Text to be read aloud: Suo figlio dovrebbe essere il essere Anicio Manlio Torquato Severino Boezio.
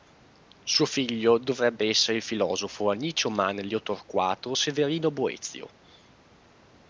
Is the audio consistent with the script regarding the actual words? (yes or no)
no